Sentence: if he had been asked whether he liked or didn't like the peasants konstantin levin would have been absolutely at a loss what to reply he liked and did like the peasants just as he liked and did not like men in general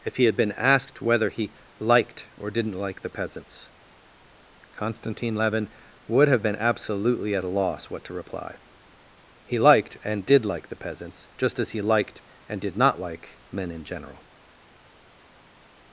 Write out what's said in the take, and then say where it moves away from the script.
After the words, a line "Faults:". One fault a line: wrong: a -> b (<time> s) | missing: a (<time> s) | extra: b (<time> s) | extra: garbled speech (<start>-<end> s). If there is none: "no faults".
if he had been asked whether he liked or didn't like the peasants konstantin levin would have been absolutely at a loss what to reply he liked and did like the peasants just as he liked and did not like men in general
Faults:
no faults